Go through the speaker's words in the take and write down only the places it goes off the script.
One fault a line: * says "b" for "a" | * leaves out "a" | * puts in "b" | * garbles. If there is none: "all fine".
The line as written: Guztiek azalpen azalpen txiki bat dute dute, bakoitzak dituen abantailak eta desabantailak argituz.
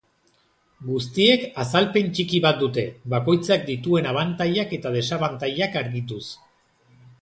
* leaves out "azalpen"
* leaves out "dute"